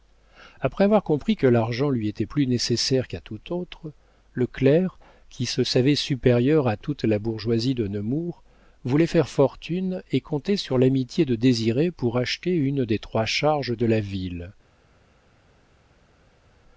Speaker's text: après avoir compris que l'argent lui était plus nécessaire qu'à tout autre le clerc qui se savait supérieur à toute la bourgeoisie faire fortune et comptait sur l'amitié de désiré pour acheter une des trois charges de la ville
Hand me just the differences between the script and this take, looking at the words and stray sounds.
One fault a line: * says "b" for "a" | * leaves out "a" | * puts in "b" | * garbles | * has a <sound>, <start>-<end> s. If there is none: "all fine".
* puts in "de nemours voulait"